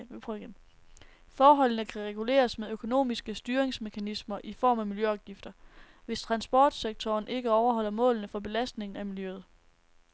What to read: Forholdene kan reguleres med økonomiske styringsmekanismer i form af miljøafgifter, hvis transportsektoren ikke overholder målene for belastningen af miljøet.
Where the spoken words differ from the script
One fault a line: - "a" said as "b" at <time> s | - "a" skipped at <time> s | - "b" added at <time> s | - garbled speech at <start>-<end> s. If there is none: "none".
none